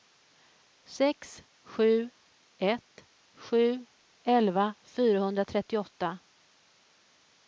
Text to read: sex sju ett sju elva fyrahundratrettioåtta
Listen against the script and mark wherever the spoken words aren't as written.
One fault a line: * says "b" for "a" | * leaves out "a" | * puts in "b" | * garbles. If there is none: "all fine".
all fine